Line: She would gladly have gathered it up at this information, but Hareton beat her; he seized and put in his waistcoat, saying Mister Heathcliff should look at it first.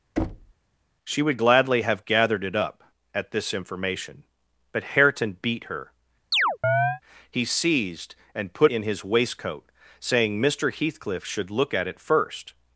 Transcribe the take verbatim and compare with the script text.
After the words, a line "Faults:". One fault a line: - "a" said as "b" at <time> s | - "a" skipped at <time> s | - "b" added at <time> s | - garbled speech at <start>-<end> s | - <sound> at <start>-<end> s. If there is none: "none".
She would gladly have gathered it up at this information, but Hareton beat her; he seized and put in his waistcoat, saying Mister Heathcliff should look at it first.
Faults:
- thud at 0.2-0.5 s
- chirp at 6.3-7.0 s